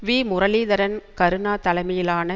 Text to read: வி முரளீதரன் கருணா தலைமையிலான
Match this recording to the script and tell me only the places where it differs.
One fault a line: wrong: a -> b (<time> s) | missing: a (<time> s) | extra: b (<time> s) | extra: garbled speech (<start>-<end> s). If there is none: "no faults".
no faults